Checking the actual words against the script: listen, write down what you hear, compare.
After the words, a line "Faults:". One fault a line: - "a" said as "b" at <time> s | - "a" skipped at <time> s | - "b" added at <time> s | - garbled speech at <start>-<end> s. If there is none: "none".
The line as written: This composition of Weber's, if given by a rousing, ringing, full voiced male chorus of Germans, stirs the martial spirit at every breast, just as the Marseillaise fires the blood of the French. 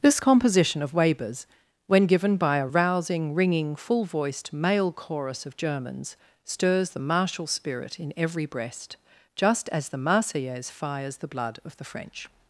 This composition of Weber's, when given by a rousing, ringing, full voiced male chorus of Germans, stirs the martial spirit in every breast, just as the Marseillaise fires the blood of the French.
Faults:
- "if" said as "when" at 1.9 s
- "at" said as "in" at 8.0 s